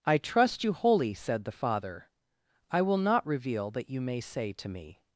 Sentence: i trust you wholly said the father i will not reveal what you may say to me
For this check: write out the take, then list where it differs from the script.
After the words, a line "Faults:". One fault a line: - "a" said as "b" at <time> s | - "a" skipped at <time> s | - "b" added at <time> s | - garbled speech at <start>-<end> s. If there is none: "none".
i trust you wholly said the father i will not reveal that you may say to me
Faults:
- "what" said as "that" at 3.7 s